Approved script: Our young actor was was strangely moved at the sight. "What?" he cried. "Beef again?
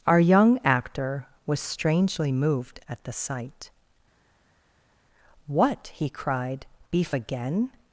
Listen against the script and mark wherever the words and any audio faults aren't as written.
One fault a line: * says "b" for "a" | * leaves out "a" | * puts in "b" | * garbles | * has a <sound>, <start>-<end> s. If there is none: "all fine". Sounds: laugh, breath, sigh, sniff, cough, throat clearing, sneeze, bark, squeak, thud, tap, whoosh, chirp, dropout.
* leaves out "was"